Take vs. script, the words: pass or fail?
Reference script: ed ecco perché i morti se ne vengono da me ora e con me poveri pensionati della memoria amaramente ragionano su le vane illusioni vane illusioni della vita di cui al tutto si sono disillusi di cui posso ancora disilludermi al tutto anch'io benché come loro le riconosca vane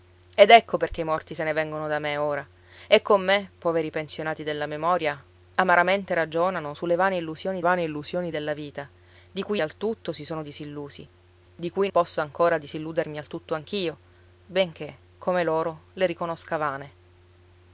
pass